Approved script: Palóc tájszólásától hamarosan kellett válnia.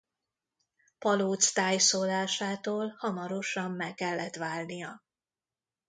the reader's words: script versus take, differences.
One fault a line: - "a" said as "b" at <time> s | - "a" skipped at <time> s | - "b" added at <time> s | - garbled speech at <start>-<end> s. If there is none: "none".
- "meg" added at 3.7 s